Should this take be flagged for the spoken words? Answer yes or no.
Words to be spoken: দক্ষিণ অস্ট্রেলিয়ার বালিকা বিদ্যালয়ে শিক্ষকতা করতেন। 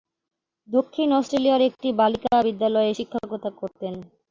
yes